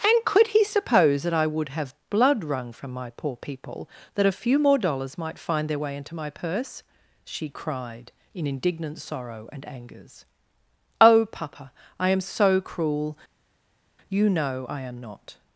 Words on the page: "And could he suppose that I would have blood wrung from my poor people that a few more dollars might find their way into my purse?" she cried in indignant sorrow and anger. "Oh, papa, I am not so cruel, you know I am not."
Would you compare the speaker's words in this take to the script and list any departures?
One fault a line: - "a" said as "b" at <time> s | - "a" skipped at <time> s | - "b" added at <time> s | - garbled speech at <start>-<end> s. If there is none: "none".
- "anger" said as "angers" at 9.7 s
- "not" skipped at 12.2 s